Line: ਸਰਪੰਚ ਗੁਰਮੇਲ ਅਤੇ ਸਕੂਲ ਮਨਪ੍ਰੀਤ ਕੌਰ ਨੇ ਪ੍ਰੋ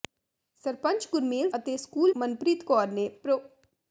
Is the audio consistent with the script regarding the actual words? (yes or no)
yes